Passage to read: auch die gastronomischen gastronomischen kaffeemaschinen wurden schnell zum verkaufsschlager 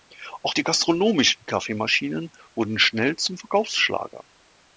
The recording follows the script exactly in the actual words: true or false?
false